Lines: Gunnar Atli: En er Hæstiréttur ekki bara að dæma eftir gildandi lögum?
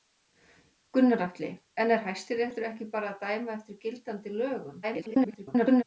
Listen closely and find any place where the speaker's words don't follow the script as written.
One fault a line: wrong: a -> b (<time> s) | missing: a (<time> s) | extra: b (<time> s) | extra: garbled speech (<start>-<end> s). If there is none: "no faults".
extra: garbled speech (4.8-5.8 s)